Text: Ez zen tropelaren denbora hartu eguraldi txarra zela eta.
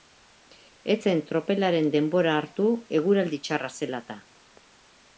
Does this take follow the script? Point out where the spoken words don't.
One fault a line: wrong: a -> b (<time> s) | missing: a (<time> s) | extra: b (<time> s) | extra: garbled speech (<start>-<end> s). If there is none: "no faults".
no faults